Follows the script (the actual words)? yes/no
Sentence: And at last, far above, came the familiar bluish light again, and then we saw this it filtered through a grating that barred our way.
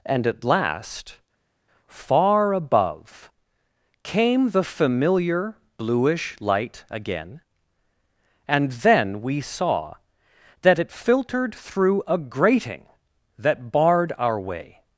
no